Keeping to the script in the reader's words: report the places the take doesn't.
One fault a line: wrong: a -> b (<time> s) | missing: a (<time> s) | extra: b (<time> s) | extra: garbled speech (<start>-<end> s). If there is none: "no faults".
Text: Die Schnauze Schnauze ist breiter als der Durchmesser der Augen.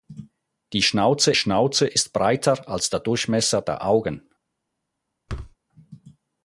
no faults